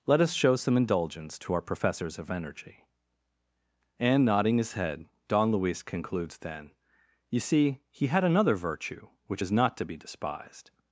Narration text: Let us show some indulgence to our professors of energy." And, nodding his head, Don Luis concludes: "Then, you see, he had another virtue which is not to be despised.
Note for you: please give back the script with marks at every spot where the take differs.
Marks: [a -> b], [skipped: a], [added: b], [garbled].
Let us show some indulgence to our professors of energy." And, nodding his head, Don Luis concludes: "Then, you see, he had another virtue which is not to be despised.